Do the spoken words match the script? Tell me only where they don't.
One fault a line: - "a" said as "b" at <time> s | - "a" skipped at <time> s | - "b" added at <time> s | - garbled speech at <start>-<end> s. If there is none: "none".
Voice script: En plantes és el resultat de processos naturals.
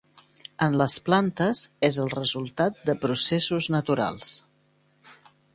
- "les" added at 0.8 s